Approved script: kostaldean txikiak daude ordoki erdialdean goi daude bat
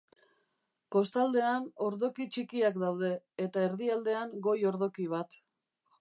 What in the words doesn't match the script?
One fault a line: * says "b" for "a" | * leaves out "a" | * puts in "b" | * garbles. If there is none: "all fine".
* puts in "ordoki"
* says "eta" for "ordoki"
* says "ordoki" for "daude"